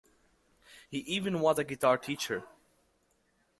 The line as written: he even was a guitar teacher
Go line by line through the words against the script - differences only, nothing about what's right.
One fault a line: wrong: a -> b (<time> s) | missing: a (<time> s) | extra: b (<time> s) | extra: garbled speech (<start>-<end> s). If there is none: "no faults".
no faults